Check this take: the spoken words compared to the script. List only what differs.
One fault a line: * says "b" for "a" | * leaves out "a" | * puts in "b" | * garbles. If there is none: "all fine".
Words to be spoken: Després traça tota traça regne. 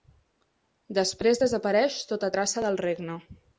* says "desapareix" for "traça"
* puts in "del"